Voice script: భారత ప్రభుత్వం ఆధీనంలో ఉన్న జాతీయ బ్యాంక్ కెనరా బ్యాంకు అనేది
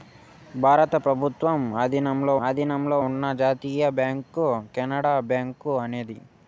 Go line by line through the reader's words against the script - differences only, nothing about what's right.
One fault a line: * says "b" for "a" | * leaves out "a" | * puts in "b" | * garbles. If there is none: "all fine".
* puts in "ఆధీనంలో"